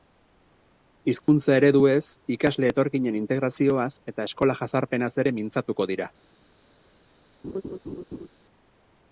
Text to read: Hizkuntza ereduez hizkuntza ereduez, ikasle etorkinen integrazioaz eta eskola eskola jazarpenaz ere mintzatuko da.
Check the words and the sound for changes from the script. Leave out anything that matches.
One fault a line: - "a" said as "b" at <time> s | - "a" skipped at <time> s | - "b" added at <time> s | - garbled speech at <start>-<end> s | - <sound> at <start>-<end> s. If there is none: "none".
- dropout at 1.2-1.3 s
- "hizkuntza ereduez" skipped at 2.0 s
- "eskola" skipped at 4.6 s
- "da" said as "dira" at 5.9 s
- laugh at 7.4-8.3 s